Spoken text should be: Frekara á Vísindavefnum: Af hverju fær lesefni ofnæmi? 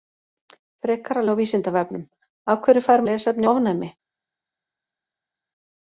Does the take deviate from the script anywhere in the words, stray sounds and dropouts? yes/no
no